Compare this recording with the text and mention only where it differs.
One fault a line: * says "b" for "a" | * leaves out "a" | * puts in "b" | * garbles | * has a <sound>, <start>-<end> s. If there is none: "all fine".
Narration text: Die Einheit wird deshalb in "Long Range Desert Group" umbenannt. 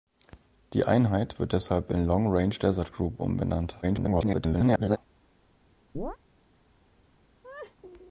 * garbles
* has a chirp, 5.9-6.2 s
* has a laugh, 7.4-7.8 s